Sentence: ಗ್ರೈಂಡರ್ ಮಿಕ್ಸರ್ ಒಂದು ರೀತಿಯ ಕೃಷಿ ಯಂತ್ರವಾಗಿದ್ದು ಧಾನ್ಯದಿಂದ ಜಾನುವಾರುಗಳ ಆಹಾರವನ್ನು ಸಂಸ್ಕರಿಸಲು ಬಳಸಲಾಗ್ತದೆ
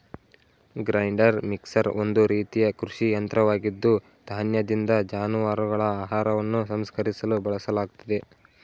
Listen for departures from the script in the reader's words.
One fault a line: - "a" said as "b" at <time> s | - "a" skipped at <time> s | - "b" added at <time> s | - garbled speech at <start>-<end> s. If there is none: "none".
none